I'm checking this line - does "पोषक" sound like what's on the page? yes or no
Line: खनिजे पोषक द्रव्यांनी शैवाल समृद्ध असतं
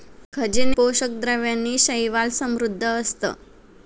yes